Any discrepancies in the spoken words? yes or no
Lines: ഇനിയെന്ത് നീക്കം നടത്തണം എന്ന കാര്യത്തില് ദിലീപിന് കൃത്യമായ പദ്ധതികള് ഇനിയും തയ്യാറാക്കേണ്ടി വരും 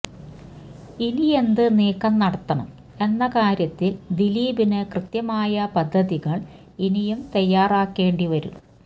no